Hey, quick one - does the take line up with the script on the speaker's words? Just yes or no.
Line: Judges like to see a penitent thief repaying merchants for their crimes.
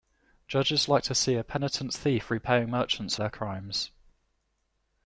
no